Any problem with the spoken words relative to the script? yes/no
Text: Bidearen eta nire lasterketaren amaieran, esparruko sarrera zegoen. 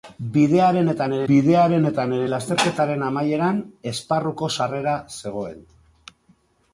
yes